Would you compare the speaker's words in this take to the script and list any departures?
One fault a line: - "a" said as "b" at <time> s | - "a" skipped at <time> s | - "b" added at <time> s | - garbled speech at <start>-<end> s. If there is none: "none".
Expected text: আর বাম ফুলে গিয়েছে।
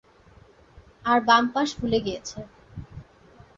- "পাশ" added at 1.5 s